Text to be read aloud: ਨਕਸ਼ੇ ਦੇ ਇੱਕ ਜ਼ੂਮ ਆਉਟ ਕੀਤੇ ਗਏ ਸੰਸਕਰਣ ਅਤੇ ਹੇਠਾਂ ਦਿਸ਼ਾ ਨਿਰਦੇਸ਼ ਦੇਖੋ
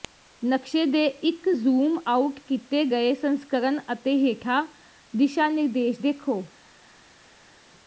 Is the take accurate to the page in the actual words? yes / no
yes